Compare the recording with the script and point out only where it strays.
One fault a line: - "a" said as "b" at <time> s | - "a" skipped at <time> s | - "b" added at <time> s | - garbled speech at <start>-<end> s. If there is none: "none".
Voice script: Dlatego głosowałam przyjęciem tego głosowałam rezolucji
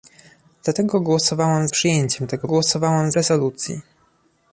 none